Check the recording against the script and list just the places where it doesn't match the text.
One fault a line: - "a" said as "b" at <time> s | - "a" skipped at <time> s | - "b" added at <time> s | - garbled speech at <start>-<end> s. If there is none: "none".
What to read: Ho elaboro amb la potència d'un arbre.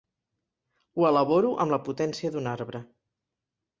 none